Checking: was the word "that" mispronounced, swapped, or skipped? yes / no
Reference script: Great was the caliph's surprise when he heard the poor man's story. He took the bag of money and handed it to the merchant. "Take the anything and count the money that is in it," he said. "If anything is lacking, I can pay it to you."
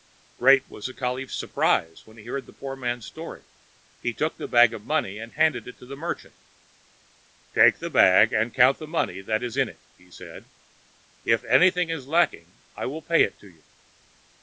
no